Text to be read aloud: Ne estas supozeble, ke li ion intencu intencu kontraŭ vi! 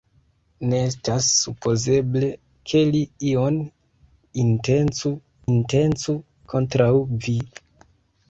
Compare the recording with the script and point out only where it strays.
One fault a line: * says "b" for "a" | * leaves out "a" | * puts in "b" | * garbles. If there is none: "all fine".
all fine